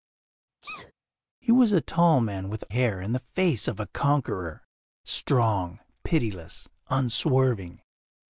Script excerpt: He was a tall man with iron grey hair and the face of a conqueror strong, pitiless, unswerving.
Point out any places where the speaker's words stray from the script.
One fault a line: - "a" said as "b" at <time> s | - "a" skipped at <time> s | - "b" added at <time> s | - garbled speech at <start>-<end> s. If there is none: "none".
- "iron grey" skipped at 2.6 s